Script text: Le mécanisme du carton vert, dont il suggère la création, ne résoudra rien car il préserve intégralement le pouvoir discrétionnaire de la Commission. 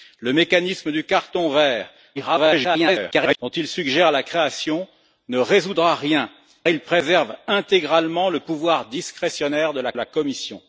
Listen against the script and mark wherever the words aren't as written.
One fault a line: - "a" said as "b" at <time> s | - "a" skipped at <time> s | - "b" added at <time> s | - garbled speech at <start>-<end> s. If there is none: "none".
- garbled speech at 2.2-3.4 s
- "car" skipped at 6.3 s
- "la" added at 9.9 s